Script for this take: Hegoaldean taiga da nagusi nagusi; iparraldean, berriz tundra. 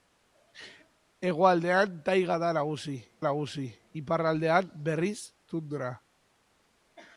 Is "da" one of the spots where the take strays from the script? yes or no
no